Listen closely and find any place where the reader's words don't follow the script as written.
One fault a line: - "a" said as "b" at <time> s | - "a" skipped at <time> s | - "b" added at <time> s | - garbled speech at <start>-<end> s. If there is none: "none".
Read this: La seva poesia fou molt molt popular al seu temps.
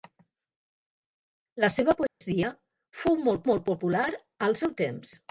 none